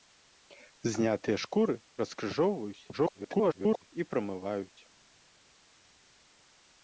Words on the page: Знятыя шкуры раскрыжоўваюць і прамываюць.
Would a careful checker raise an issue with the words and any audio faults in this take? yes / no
yes